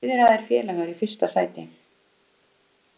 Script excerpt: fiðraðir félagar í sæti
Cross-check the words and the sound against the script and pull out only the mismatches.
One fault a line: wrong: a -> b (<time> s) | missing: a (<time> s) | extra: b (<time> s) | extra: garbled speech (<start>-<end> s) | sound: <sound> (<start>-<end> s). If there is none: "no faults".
extra: fyrsta (1.0 s)